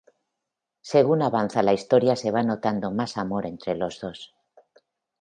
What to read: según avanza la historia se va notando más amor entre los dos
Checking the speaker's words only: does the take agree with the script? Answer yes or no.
yes